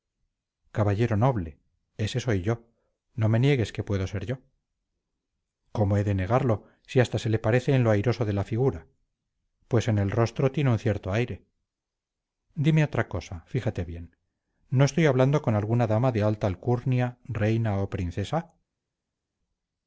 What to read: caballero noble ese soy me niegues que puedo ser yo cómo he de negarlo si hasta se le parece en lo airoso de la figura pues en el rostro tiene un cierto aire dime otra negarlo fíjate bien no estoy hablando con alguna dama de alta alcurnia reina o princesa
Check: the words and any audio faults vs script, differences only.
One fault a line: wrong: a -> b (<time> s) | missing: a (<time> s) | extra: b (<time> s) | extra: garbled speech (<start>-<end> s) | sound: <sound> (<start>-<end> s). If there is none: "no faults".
extra: yo no (2.4 s)
wrong: negarlo -> cosa (13.1 s)